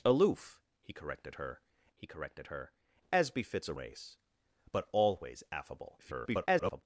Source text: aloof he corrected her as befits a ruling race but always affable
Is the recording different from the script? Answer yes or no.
yes